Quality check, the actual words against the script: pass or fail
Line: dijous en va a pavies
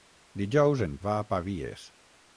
pass